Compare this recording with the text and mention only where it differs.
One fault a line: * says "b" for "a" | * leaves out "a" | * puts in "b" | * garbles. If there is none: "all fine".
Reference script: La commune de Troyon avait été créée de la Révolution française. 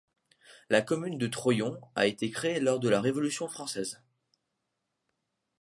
* says "a" for "avait"
* puts in "lors"